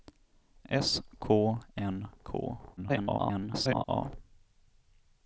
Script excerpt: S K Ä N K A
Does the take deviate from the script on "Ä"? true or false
true